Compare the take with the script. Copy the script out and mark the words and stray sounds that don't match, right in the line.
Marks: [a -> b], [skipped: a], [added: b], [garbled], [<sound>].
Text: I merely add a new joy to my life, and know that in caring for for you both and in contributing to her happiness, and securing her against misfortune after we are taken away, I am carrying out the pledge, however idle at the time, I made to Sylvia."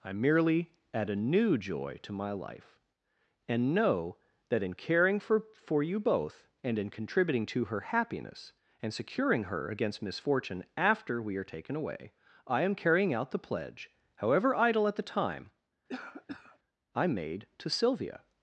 I merely add a new joy to my life, and know that in caring for for you both and in contributing to her happiness, and securing her against misfortune after we are taken away, I am carrying out the pledge, however idle at the time, [cough] I made to Sylvia."